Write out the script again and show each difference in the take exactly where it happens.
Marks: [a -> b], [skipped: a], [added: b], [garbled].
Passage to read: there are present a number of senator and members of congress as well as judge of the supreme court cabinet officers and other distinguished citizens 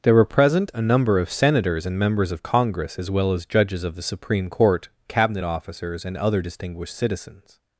there [are -> were] present a number of [senator -> senators] and members of congress as well as [judge -> judges] of the supreme court cabinet officers and other distinguished citizens